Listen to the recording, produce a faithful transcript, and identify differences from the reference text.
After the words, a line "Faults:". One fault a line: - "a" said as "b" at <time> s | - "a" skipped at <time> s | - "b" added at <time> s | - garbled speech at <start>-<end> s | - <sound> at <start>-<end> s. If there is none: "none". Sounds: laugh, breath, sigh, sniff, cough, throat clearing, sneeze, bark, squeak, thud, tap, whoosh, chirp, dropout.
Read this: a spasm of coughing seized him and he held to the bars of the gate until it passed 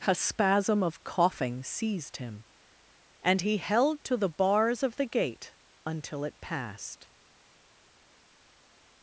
a spasm of coughing seized him and he held to the bars of the gate until it passed
Faults:
none